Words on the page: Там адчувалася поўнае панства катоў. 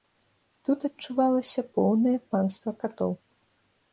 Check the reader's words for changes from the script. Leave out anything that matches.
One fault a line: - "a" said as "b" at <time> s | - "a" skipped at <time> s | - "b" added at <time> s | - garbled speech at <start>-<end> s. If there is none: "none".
- "Там" said as "Тут" at 0.7 s